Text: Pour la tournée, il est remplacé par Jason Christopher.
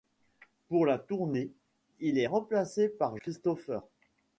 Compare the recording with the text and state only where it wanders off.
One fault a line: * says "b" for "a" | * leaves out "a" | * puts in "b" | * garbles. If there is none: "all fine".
* leaves out "Jason"